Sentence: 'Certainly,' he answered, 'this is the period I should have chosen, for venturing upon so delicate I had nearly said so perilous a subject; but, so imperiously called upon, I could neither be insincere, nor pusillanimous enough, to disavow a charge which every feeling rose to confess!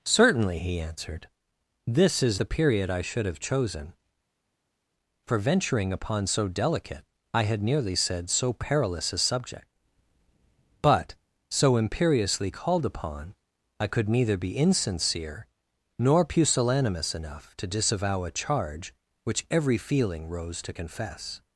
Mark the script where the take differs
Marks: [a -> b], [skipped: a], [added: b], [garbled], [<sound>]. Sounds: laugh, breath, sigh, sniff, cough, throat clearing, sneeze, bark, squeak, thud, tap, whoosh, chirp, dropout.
'Certainly,' he answered, 'this is the period I should have chosen, for venturing upon so delicate I had nearly said so perilous a subject; but, so imperiously called upon, I could neither be insincere, nor pusillanimous enough, to disavow a charge which every feeling rose to confess!